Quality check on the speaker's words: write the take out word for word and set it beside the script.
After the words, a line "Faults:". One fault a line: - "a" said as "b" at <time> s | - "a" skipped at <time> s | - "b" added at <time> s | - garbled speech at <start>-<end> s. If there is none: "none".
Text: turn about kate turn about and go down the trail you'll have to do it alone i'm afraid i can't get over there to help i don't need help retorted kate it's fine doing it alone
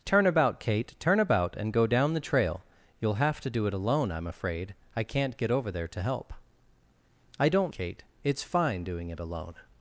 turn about kate turn about and go down the trail you'll have to do it alone i'm afraid i can't get over there to help i don't kate it's fine doing it alone
Faults:
- "need help retorted" skipped at 7.7 s